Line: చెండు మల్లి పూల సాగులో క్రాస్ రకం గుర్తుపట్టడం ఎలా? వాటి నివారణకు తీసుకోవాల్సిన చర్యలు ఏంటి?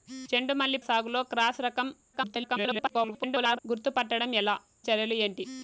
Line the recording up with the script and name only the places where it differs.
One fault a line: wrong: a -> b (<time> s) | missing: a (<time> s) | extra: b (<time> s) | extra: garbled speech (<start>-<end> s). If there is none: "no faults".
missing: పూల (0.8 s)
extra: garbled speech (2.1-3.6 s)
missing: వాటి నివారణకు తీసుకోవాల్సిన (4.6 s)